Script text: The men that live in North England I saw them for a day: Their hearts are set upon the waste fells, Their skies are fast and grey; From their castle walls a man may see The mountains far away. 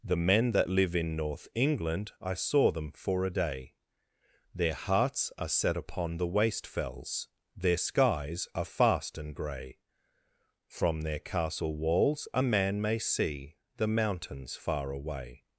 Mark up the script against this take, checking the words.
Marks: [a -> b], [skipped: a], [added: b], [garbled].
The men that live in North England I saw them for a day: Their hearts are set upon the waste fells, Their skies are fast and grey; From their castle walls a man may see The mountains far away.